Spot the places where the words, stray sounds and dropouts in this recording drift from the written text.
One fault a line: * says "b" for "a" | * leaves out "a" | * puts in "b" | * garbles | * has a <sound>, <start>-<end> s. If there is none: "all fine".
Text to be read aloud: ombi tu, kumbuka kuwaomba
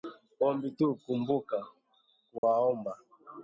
* has a dropout, 2.4-2.4 s